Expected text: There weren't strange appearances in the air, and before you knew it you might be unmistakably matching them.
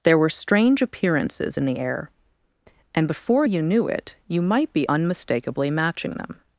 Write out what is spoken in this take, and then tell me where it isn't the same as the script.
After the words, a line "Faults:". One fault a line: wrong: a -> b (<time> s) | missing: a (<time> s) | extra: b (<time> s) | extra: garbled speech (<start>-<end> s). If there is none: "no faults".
There were strange appearances in the air, and before you knew it you might be unmistakably matching them.
Faults:
wrong: weren't -> were (0.2 s)